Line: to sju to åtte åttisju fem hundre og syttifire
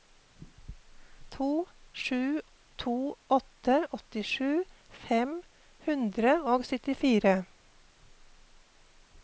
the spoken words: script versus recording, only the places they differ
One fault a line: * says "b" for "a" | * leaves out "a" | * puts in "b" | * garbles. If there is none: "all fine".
all fine